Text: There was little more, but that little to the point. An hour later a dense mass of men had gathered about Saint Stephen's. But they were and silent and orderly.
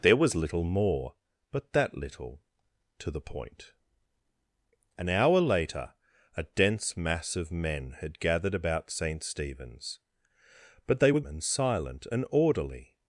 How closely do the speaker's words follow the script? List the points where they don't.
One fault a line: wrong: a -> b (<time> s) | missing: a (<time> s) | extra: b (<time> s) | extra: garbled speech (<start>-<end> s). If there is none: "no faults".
no faults